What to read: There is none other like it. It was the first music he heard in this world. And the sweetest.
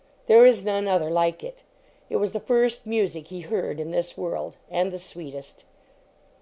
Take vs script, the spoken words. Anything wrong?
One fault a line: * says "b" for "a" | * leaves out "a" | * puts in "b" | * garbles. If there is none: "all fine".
all fine